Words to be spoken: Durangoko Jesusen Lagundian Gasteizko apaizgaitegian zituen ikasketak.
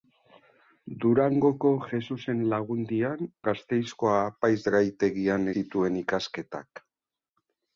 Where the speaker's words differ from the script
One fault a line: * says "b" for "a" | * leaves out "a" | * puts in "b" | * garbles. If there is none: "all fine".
all fine